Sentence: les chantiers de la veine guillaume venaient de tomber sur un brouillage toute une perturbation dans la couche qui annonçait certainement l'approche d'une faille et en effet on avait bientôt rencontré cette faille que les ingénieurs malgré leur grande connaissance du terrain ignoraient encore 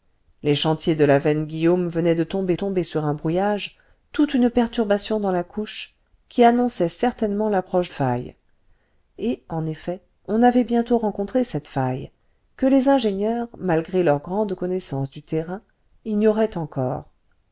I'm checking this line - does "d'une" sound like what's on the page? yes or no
no